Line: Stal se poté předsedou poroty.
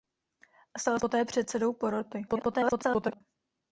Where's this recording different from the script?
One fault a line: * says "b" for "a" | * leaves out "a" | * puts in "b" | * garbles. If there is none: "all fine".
* leaves out "se"
* garbles